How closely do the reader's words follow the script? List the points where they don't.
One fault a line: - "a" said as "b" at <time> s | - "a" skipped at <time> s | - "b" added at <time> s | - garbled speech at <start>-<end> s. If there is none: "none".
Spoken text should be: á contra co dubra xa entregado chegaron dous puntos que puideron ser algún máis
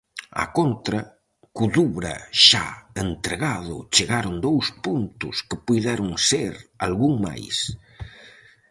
none